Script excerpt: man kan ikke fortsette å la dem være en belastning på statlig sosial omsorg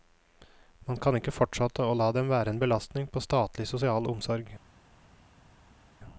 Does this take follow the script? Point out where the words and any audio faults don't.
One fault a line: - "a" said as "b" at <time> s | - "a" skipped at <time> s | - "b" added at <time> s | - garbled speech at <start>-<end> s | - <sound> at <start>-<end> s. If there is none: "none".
none